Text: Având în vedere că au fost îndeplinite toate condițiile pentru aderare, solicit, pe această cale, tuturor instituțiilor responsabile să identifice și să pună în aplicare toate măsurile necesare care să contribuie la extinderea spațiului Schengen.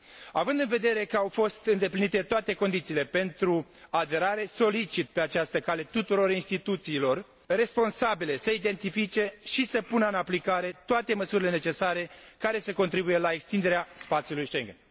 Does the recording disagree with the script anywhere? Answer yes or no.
no